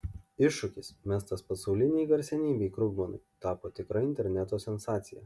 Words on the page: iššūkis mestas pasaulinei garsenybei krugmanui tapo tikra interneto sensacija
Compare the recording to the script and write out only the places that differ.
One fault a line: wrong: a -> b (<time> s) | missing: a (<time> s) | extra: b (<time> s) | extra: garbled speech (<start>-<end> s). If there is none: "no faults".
no faults